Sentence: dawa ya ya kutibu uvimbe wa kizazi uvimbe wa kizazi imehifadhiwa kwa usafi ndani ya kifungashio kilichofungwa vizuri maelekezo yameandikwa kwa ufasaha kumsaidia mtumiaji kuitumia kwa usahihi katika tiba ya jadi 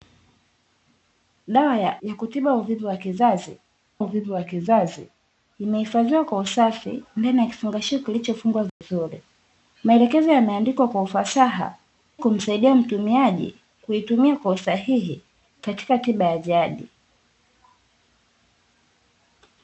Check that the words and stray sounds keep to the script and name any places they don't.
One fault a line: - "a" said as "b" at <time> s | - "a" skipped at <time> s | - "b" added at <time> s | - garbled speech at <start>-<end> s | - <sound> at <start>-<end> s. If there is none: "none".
- dropout at 8.7-8.8 s